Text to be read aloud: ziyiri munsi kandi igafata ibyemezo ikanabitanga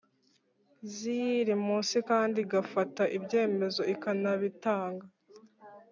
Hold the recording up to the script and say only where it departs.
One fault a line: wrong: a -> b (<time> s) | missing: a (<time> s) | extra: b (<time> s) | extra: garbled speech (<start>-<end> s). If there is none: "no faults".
no faults